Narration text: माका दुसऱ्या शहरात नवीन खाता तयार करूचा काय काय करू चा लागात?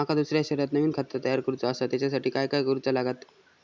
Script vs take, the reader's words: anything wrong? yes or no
yes